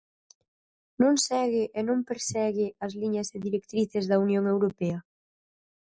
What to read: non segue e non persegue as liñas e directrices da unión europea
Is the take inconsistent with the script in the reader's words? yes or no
no